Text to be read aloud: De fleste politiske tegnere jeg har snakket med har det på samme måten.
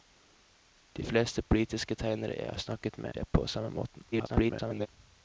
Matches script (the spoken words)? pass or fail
fail